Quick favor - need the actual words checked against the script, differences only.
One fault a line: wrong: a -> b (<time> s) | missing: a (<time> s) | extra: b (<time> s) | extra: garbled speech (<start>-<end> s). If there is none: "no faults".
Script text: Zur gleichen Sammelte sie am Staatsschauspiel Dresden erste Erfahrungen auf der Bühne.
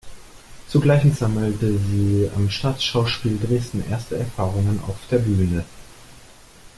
no faults